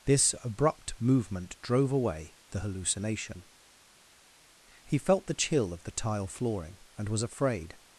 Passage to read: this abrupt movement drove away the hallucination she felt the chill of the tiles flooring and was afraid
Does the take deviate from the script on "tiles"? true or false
true